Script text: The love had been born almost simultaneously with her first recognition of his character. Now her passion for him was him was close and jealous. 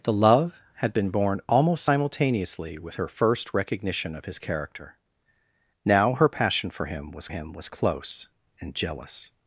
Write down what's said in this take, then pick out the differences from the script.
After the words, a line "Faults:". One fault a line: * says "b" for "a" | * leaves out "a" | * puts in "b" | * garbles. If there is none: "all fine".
The love had been born almost simultaneously with her first recognition of his character. Now her passion for him was him was close and jealous.
Faults:
all fine